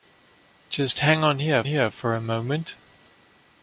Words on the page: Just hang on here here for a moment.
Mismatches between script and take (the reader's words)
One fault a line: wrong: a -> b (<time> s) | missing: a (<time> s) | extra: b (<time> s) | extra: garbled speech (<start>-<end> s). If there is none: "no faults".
no faults